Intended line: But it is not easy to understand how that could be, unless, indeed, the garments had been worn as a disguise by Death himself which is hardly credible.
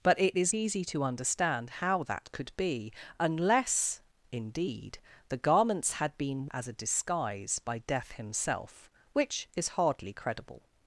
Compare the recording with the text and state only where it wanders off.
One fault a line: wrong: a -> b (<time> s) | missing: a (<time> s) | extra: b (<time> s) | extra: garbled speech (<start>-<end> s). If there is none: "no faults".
missing: not (0.5 s)
missing: worn (6.4 s)